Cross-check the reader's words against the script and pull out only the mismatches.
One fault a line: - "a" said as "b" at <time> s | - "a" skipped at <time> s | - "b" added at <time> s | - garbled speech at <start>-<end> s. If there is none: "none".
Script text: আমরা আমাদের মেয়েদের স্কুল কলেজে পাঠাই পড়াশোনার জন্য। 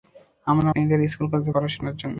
- "আমাদের" skipped at 0.7 s
- "পাঠাই" skipped at 1.5 s